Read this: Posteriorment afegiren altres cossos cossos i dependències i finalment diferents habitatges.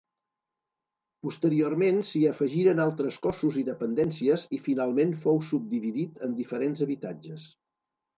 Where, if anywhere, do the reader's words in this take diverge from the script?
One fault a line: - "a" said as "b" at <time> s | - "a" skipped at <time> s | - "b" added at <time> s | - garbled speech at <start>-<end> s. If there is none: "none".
- "s'hi" added at 2.1 s
- "cossos" skipped at 3.6 s
- "fou subdividit en" added at 5.2 s